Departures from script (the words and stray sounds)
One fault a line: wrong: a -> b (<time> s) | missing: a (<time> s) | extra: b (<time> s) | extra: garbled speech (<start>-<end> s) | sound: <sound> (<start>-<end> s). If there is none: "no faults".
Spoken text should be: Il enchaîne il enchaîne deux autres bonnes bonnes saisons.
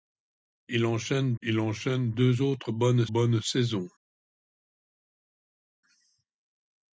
no faults